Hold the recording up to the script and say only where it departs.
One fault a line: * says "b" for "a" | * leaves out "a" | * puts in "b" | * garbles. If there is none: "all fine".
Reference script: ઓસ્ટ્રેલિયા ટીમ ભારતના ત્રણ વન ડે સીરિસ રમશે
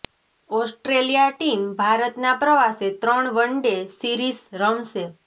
* puts in "પ્રવાસે"